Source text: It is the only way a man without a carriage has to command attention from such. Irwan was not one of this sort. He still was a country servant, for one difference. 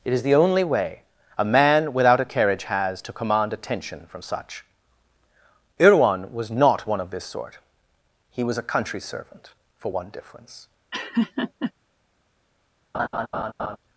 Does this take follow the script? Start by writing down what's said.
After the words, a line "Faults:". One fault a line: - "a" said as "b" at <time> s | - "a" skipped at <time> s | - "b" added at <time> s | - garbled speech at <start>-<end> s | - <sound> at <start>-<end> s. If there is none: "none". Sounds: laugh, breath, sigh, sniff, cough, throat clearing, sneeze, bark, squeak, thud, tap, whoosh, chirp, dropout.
It is the only way a man without a carriage has to command attention from such. Irwan was not one of this sort. He was a country servant, for one difference.
Faults:
- "still" skipped at 8.4 s
- laugh at 10.9-11.7 s
- laugh at 12.9-13.8 s